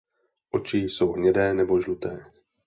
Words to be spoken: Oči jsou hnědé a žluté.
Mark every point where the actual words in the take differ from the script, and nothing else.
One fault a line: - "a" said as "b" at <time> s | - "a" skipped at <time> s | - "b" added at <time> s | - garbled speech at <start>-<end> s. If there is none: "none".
- "a" said as "nebo" at 1.5 s